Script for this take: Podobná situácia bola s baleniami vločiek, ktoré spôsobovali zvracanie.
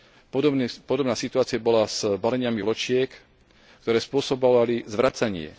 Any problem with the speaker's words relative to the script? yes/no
no